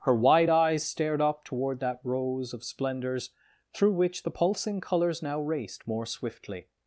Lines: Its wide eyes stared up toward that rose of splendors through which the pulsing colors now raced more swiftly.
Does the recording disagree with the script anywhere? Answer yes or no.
yes